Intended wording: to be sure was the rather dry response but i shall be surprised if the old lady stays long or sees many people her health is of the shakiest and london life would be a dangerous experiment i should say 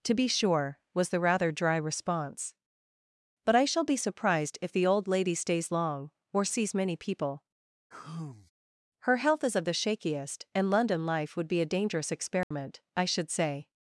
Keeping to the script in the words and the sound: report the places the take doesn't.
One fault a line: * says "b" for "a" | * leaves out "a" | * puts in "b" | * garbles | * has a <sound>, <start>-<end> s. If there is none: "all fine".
* has a sigh, 7.9-8.5 s
* has a dropout, 12.4-12.5 s